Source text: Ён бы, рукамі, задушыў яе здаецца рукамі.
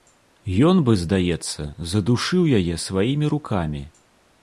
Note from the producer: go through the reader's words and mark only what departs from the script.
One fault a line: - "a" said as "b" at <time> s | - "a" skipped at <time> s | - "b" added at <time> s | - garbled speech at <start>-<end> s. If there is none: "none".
- "рукамі" said as "здаецца" at 1.0 s
- "здаецца" said as "сваімі" at 2.9 s